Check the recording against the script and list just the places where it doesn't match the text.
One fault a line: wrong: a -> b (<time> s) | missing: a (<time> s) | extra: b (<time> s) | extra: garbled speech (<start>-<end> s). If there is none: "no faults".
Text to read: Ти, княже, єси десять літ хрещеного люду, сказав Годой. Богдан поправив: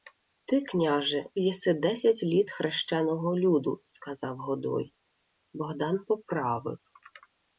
no faults